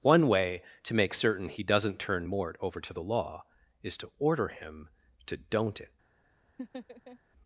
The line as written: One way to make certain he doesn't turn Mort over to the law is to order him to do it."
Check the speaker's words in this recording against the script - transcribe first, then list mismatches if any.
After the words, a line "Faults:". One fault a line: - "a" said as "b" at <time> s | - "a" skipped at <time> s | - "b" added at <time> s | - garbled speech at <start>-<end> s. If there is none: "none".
One way to make certain he doesn't turn Mort over to the law is to order him to don't it."
Faults:
- "do" said as "don't" at 5.4 s